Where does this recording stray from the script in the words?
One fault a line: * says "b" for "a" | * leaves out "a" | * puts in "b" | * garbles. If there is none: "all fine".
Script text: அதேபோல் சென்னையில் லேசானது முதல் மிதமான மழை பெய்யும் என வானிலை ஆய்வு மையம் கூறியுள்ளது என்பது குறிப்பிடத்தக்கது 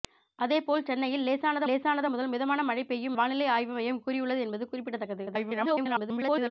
* puts in "லேசானது"
* leaves out "என"
* garbles